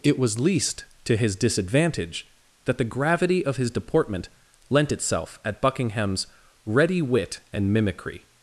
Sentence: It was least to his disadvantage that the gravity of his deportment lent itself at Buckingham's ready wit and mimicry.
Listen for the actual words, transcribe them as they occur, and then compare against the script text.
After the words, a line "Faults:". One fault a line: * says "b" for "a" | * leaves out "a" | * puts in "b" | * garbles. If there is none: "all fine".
It was least to his disadvantage that the gravity of his deportment lent itself at Buckingham's ready wit and mimicry.
Faults:
all fine